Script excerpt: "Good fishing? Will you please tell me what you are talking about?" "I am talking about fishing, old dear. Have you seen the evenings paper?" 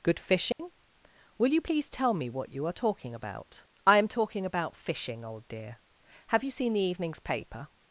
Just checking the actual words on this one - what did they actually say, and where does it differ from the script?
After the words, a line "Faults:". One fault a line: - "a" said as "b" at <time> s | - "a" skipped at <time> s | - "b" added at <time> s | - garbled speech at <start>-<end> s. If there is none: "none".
"Good fishing? Will you please tell me what you are talking about?" "I am talking about fishing, old dear. Have you seen the evenings paper?"
Faults:
none